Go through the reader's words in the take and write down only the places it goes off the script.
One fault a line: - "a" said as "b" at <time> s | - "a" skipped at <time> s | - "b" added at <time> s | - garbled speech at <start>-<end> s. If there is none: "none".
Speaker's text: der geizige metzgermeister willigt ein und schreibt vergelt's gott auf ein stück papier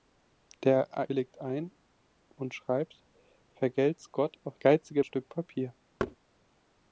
- "geizige metzgermeister" skipped at 0.9 s
- "ein" said as "geizige" at 4.6 s